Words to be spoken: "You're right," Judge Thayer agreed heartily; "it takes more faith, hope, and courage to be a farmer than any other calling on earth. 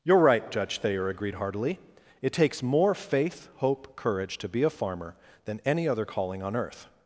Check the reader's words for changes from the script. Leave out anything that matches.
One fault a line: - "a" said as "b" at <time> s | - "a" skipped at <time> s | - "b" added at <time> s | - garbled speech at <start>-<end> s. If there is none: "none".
- "and" skipped at 4.0 s